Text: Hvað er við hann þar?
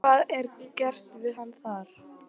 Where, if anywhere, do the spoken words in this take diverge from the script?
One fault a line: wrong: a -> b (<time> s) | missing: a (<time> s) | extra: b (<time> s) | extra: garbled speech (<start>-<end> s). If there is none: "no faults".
extra: gert (0.8 s)